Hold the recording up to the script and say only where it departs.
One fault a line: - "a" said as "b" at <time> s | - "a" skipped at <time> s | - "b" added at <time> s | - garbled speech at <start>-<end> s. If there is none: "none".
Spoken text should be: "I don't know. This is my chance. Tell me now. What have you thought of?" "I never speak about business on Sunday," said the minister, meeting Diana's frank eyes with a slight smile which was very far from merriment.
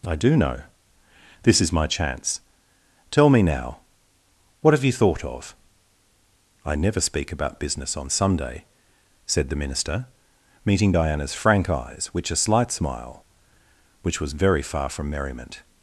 - "don't" said as "do" at 0.1 s
- "with" said as "which" at 12.1 s